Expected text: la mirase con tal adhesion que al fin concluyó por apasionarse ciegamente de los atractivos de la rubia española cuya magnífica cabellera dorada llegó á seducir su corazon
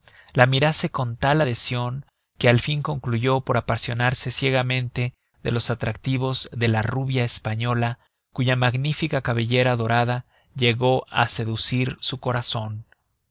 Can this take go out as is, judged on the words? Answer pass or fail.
pass